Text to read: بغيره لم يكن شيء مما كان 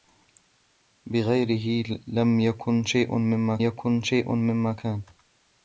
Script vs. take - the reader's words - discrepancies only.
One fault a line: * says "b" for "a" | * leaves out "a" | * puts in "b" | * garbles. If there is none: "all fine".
* puts in "يكن شيء مما"